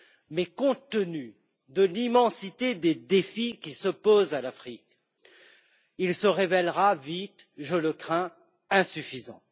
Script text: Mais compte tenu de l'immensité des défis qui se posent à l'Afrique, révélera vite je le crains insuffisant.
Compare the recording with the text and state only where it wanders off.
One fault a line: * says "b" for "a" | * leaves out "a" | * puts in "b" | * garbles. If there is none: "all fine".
* puts in "il se"